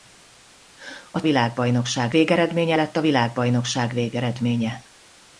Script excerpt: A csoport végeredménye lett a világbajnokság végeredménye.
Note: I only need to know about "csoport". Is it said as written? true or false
false